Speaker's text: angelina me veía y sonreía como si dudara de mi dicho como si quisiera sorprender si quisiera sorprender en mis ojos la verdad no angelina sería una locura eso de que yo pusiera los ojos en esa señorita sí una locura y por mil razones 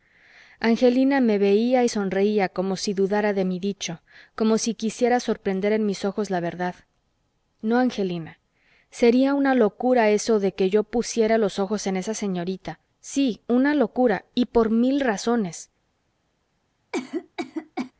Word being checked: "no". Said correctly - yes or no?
yes